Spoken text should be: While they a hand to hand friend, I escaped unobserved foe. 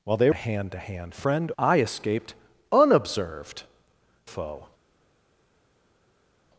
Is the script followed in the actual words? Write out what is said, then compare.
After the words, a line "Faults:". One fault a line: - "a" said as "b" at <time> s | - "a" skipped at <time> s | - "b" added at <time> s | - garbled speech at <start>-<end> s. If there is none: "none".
While they a hand to hand friend, I escaped unobserved foe.
Faults:
none